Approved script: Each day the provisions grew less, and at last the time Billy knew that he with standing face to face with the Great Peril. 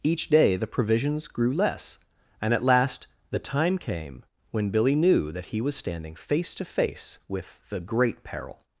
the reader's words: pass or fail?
fail